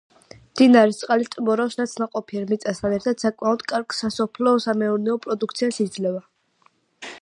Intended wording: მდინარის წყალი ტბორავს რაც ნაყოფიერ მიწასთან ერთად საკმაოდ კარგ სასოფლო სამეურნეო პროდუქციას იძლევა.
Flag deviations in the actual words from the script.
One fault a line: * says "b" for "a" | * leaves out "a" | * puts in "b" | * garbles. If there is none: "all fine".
all fine